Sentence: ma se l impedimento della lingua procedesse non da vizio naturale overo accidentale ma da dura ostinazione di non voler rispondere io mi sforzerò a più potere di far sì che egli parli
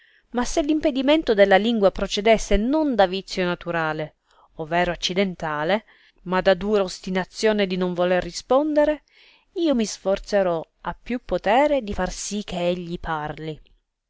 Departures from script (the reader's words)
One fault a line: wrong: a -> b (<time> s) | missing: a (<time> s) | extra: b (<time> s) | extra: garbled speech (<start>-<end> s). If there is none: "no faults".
no faults